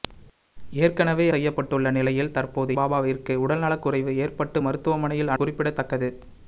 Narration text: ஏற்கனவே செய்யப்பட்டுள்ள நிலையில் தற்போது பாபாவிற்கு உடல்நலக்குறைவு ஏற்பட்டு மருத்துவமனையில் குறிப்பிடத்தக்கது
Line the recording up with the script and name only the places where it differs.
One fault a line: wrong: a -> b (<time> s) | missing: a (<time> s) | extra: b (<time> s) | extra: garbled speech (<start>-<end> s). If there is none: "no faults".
no faults